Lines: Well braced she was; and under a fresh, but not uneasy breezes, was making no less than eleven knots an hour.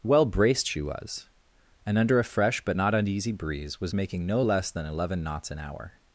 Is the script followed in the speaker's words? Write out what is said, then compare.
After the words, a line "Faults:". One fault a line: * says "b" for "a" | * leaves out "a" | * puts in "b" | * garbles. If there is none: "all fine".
Well braced she was; and under a fresh, but not uneasy breeze, was making no less than eleven knots an hour.
Faults:
* says "breeze" for "breezes"